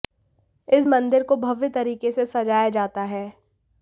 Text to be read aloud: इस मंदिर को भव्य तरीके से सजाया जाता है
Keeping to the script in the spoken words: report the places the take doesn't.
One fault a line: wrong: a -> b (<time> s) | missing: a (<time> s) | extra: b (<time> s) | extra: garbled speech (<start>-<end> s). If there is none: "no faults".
no faults